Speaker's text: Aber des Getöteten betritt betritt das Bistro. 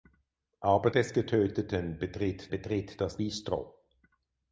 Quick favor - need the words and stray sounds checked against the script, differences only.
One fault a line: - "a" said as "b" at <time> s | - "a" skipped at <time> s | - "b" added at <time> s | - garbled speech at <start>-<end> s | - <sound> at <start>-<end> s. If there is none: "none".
none